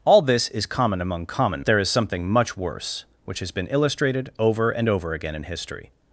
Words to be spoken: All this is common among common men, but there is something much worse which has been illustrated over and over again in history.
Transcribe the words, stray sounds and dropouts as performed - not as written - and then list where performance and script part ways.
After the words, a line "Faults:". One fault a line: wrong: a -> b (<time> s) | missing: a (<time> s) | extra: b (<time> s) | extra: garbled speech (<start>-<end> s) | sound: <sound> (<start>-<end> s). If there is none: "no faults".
All this is common among common there is something much worse which has been illustrated over and over again in history.
Faults:
missing: men but (1.6 s)